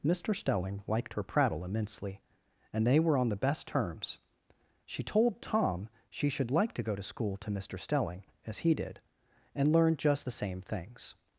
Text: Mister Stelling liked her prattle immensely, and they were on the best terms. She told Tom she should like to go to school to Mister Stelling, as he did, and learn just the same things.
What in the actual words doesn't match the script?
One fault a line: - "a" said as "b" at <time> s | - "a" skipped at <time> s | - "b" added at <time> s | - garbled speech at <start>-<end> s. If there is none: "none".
none